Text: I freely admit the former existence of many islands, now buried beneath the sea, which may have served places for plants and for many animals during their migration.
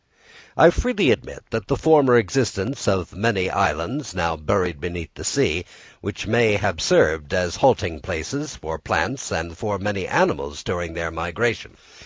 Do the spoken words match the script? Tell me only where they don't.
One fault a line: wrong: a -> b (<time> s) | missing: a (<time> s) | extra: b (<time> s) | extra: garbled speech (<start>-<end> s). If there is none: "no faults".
extra: as halting (7.3 s)